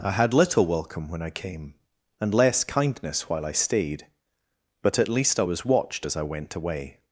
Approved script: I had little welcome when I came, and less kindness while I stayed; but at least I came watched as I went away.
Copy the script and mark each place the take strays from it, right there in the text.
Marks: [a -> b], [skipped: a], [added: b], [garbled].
I had little welcome when I came, and less kindness while I stayed; but at least I [came -> was] watched as I went away.